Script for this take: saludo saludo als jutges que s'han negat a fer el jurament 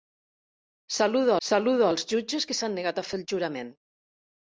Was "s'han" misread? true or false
false